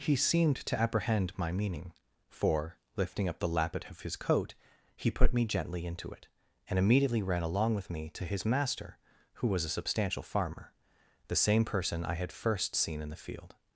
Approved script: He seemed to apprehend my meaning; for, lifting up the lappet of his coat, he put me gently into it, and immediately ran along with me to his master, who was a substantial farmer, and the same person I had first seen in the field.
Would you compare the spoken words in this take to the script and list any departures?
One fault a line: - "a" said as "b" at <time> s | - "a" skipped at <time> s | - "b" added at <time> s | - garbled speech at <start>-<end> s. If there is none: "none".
- "and" skipped at 10.7 s